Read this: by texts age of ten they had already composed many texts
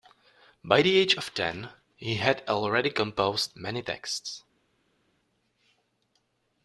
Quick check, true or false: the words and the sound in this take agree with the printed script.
false